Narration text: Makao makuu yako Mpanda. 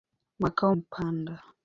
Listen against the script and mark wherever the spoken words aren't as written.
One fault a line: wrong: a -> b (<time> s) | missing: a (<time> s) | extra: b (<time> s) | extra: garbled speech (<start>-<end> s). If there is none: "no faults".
missing: makuu yako (0.8 s)